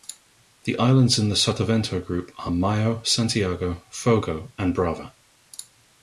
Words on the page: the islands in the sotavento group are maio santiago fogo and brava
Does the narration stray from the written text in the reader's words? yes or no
no